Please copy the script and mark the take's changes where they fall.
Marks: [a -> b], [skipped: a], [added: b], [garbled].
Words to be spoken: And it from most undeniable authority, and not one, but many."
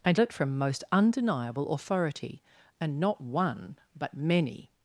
And it from most undeniable authority, and not one, but many."